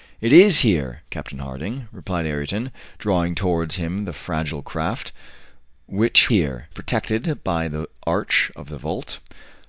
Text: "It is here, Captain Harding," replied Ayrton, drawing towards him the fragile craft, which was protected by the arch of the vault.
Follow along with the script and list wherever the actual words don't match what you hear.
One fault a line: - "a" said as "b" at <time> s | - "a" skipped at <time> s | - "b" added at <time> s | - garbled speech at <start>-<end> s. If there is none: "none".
- "was" said as "here" at 6.3 s